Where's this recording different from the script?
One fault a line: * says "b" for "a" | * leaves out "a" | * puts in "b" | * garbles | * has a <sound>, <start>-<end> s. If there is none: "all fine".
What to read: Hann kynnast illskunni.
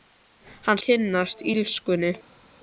all fine